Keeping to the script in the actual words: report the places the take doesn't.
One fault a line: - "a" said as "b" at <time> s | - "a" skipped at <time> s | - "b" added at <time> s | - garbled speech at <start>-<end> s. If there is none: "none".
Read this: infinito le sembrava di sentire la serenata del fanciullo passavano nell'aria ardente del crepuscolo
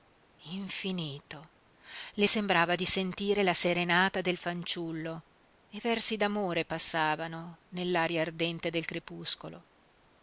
- "e versi d'amore" added at 5.7 s